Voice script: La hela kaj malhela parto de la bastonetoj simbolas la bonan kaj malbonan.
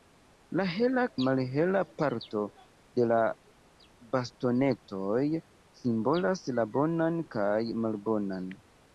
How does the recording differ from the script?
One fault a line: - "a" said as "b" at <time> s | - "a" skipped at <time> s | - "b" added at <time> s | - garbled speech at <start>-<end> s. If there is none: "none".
- "kaj" skipped at 1.0 s